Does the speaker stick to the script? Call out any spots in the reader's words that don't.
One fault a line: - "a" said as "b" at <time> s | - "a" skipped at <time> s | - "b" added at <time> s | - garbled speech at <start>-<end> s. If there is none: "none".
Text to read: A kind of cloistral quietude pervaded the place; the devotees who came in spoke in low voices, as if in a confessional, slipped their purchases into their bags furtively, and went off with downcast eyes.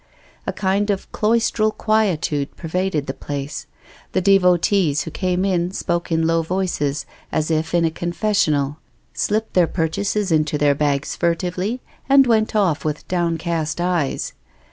none